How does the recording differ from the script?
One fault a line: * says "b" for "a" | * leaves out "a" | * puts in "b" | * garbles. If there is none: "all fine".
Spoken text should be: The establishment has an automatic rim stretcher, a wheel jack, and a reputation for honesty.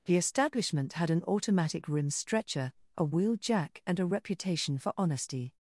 * says "had" for "has"